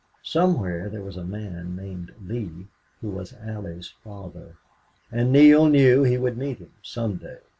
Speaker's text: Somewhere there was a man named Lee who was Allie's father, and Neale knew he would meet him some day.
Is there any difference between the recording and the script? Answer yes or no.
no